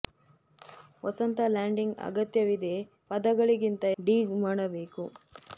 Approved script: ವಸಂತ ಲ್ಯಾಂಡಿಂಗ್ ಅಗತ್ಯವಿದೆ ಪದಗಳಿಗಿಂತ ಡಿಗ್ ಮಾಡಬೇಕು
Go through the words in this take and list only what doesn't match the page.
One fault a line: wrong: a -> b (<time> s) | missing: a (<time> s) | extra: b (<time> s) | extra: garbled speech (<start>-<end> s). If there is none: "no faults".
no faults